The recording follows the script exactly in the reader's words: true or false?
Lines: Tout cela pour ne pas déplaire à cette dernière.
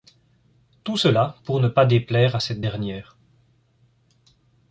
true